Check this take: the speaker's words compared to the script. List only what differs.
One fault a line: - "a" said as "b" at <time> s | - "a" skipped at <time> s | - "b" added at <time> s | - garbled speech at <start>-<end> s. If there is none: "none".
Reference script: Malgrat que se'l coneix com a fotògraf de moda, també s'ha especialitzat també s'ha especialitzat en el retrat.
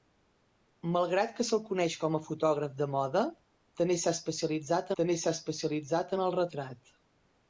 none